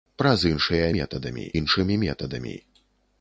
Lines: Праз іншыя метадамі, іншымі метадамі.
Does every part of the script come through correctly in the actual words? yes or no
yes